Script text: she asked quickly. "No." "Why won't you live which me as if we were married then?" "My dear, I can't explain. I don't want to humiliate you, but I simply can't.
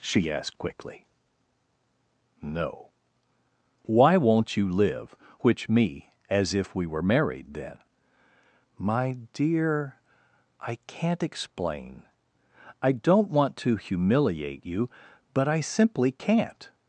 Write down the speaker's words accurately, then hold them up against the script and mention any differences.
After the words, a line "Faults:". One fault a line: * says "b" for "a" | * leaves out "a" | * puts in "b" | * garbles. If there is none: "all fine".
she asked quickly. "No." "Why won't you live which me as if we were married then?" "My dear, I can't explain. I don't want to humiliate you, but I simply can't.
Faults:
all fine